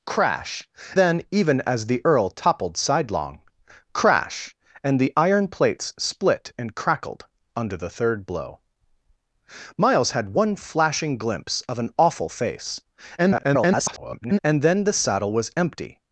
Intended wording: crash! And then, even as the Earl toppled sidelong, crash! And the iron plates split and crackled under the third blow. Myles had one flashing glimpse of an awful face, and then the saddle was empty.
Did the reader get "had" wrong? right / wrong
right